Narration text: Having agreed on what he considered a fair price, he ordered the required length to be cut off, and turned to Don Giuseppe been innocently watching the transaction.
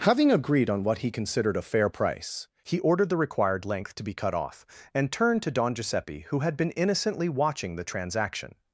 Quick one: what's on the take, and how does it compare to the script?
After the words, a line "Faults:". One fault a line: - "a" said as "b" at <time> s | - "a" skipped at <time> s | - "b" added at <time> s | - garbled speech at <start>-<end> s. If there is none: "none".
Having agreed on what he considered a fair price, he ordered the required length to be cut off, and turned to Don Giuseppe who had been innocently watching the transaction.
Faults:
- "who had" added at 6.3 s